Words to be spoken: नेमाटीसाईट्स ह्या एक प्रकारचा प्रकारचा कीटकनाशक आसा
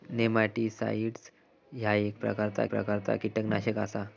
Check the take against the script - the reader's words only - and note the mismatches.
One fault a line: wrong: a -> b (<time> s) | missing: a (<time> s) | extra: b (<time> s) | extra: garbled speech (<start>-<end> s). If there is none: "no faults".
no faults